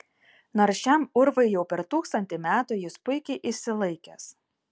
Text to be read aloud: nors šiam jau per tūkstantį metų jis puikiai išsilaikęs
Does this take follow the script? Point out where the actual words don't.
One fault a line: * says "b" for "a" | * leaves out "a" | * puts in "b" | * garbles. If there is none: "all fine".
* puts in "urvui"